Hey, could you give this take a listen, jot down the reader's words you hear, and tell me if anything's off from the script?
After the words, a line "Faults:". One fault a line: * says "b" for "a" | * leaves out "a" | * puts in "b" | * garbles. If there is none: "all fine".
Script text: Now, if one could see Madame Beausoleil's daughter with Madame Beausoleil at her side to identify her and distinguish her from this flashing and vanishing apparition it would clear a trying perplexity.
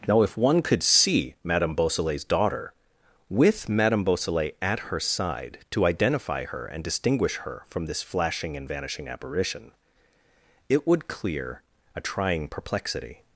Now, if one could see Madame Beausoleil's daughter with Madame Beausoleil at her side to identify her and distinguish her from this flashing and vanishing apparition it would clear a trying perplexity.
Faults:
all fine